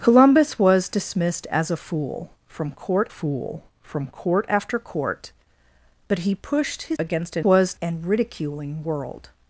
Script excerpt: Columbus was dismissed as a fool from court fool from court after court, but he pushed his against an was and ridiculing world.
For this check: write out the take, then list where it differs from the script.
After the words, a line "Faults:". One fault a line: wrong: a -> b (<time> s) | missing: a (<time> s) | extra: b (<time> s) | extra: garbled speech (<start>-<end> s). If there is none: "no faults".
Columbus was dismissed as a fool from court fool from court after court, but he pushed his against an was and ridiculing world.
Faults:
no faults